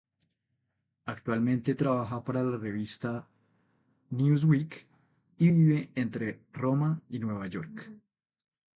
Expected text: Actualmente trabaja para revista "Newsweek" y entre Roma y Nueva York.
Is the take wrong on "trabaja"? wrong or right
right